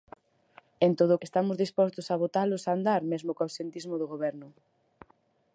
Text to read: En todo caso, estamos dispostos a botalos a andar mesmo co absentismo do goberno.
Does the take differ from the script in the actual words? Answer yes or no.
yes